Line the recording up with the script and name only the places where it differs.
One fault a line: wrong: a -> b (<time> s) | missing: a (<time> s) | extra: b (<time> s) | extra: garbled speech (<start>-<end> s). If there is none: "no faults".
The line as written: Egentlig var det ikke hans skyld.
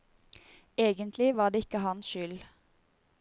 no faults